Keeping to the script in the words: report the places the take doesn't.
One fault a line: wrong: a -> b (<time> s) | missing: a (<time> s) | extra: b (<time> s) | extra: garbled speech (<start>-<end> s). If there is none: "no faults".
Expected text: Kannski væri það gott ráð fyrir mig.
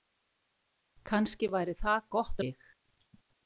missing: ráð fyrir (2.4 s)